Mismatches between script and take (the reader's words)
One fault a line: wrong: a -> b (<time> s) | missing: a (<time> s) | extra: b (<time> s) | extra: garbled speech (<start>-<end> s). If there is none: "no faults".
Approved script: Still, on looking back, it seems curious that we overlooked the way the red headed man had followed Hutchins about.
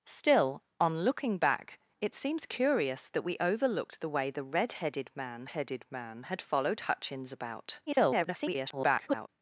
extra: headed man (5.5 s)
extra: garbled speech (7.9-9.3 s)